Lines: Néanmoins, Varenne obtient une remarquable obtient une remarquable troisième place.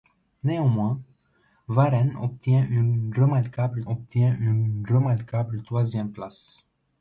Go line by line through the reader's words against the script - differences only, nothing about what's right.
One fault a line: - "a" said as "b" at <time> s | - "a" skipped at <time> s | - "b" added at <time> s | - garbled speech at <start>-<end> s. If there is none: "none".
none